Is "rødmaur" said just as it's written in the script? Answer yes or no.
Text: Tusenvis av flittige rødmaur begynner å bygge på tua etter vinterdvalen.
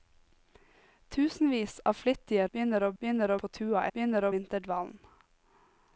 no